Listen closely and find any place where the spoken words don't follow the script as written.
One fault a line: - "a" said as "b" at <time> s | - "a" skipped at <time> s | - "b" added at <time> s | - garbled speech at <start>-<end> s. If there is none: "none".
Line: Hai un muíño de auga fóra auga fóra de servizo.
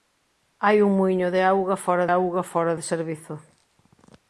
none